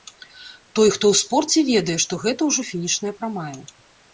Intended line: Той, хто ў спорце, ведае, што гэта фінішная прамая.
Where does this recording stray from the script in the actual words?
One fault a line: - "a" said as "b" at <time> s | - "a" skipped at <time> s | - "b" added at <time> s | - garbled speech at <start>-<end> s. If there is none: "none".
- "ўжо" added at 2.5 s